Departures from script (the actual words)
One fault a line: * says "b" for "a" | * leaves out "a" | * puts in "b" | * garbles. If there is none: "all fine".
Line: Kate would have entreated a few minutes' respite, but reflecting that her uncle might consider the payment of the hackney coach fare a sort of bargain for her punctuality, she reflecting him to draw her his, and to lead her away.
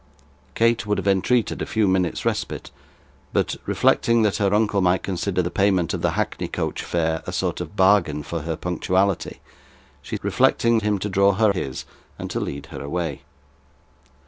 all fine